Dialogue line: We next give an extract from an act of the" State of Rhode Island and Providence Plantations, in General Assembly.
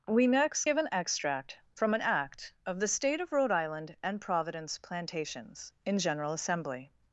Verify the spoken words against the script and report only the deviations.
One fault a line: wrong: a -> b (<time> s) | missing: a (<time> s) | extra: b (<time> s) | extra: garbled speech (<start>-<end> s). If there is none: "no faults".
no faults